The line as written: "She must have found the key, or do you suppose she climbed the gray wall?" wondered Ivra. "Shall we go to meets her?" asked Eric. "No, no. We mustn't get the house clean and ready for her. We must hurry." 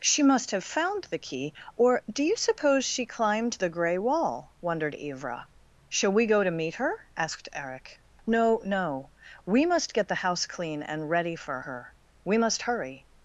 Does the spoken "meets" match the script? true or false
false